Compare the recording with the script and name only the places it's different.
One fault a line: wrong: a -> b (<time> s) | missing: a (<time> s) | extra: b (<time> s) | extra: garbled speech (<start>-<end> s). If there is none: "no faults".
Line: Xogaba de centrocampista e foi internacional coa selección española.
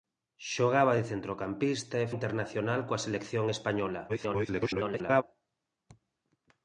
missing: foi (2.1 s)
extra: garbled speech (4.1-5.2 s)